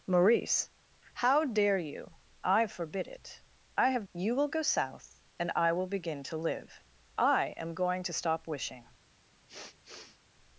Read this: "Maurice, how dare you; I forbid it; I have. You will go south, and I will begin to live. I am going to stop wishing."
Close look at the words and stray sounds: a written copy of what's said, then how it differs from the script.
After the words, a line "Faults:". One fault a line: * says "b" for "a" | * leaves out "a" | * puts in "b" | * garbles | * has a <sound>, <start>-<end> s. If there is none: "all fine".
"Maurice, how dare you; I forbid it; I have. You will go south, and I will begin to live. I am going to stop wishing."
Faults:
* has a sniff, 9.5-10.2 s